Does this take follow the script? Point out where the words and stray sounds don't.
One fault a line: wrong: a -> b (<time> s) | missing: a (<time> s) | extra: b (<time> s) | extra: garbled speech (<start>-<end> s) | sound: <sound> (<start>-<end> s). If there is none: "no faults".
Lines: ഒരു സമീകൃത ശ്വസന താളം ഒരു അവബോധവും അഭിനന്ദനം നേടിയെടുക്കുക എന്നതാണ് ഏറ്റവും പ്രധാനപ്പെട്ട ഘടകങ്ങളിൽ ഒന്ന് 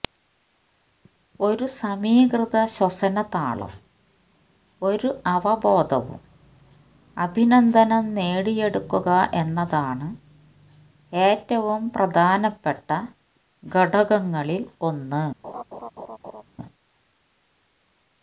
sound: laugh (15.4-16.4 s)